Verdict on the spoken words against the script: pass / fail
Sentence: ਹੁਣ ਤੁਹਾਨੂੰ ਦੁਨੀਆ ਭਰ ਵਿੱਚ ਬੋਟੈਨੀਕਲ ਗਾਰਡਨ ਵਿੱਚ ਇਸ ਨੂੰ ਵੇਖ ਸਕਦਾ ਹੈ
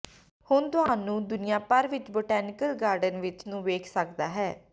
fail